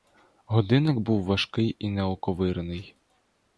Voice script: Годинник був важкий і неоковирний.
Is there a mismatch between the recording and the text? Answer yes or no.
no